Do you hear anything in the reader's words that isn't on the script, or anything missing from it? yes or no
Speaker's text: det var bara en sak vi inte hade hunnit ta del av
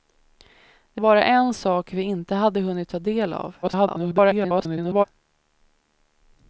yes